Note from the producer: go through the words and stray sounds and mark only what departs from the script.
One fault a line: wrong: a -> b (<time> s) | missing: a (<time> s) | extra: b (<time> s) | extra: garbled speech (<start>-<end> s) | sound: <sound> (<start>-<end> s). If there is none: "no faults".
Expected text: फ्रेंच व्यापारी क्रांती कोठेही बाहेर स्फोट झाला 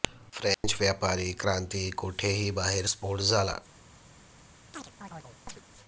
sound: dropout (0.5-0.6 s)
sound: chirp (4.7-5.6 s)